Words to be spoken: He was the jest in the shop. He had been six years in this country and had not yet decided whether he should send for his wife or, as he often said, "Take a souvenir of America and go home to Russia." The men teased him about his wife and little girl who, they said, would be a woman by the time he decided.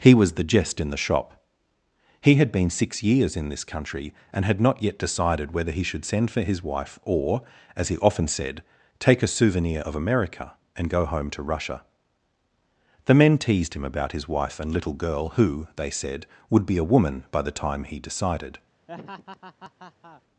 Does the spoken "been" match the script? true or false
true